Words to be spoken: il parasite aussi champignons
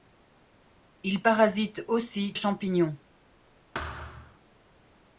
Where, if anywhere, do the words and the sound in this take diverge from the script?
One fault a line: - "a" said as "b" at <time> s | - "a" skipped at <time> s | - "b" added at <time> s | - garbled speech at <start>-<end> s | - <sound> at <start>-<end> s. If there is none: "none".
- thud at 3.7-4.4 s